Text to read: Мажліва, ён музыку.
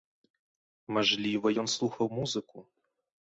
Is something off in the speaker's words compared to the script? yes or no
yes